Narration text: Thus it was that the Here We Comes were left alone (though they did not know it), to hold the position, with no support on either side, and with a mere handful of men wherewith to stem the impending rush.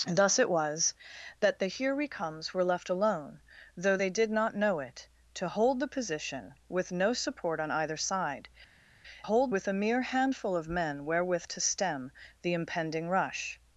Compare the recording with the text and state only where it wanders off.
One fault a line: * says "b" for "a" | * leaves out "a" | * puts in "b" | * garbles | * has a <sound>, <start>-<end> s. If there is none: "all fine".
* says "hold" for "and"